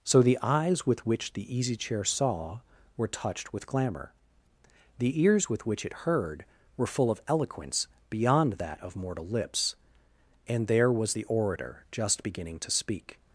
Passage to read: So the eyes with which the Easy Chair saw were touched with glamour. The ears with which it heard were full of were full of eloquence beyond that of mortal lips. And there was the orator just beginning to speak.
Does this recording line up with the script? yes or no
no